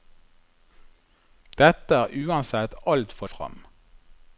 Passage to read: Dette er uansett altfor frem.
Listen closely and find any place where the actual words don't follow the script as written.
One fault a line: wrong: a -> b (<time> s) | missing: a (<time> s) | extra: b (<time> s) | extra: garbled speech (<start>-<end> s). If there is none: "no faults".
no faults